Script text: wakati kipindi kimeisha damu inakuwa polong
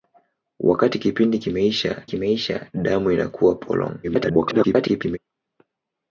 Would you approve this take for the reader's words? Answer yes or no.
no